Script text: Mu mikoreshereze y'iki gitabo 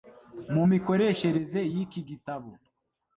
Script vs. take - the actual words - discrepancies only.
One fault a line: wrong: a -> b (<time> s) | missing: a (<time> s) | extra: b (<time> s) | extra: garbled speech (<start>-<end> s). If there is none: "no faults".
no faults